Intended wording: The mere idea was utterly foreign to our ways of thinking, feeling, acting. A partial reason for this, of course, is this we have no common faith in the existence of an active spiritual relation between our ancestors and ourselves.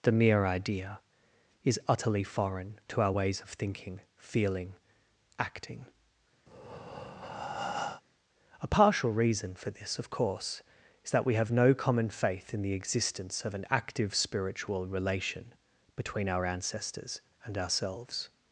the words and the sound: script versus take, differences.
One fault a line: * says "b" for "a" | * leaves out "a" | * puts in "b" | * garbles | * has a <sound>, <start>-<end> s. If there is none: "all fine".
* says "is" for "was"
* has a breath, 6.5-8.0 s
* says "that" for "this"